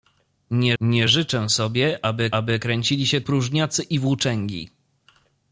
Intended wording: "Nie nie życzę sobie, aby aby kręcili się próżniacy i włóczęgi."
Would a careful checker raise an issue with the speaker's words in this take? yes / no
no